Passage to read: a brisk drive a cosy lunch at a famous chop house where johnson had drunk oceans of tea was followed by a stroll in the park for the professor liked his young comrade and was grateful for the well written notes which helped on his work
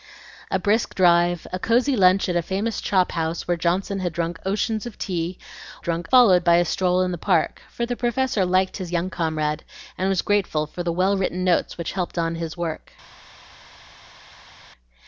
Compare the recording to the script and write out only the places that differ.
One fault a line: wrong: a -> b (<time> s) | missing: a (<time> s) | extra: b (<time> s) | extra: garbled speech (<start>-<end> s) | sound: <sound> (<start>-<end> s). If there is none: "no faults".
wrong: was -> drunk (5.8 s)